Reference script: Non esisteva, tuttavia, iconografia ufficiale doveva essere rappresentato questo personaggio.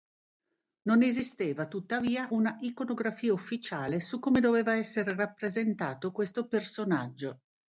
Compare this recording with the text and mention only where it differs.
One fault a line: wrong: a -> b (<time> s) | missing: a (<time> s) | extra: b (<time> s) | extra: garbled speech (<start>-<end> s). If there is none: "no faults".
extra: una (2.3 s)
extra: su come (4.0 s)